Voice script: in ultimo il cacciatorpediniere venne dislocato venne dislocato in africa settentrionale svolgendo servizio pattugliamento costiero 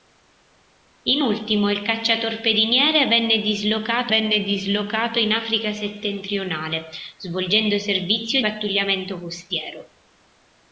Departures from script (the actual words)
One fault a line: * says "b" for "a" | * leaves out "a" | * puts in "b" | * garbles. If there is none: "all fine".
all fine